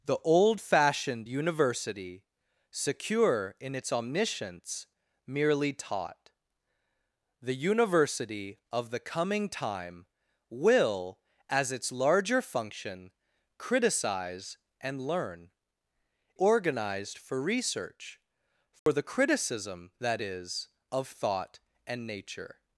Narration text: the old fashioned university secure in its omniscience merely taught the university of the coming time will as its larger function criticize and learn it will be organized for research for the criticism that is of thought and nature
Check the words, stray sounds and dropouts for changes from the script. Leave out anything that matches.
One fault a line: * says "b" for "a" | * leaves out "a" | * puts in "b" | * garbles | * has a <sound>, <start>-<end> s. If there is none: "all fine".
* leaves out "it will be"
* has a dropout, 18.8-18.9 s